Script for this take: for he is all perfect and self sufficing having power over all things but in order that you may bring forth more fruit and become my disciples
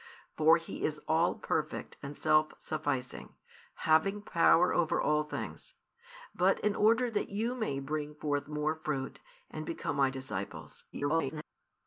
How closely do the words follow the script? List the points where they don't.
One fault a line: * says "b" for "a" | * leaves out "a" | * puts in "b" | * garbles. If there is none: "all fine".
* garbles